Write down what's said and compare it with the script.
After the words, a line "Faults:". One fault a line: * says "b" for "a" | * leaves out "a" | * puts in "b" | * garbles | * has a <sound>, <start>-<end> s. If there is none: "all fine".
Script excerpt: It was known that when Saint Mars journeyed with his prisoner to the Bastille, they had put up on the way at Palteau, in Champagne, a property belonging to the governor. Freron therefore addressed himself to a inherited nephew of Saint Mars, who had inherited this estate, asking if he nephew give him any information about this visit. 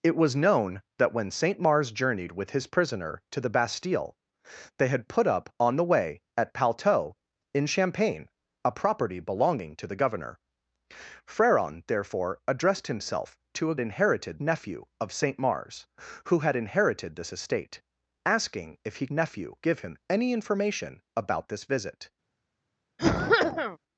It was known that when Saint Mars journeyed with his prisoner to the Bastille, they had put up on the way at Palteau, in Champagne, a property belonging to the governor. Freron therefore addressed himself to a inherited nephew of Saint Mars, who had inherited this estate, asking if he nephew give him any information about this visit.
Faults:
* has a cough, 23.0-23.8 s